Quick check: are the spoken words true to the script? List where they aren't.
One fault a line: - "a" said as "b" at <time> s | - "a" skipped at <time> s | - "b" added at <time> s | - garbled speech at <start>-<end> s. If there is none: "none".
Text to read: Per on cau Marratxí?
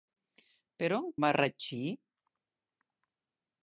- "cau" skipped at 1.1 s